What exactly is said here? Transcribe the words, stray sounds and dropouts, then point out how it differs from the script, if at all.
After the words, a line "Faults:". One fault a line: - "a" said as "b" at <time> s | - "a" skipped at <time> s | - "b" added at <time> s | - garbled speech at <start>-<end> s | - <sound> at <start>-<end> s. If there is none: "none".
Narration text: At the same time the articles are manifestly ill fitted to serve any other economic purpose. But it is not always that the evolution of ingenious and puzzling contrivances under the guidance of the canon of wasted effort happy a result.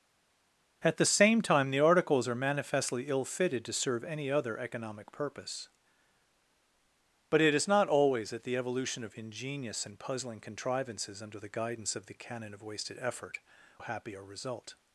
At the same time the articles are manifestly ill fitted to serve any other economic purpose. But it is not always that the evolution of ingenious and puzzling contrivances under the guidance of the canon of wasted effort happy a result.
Faults:
none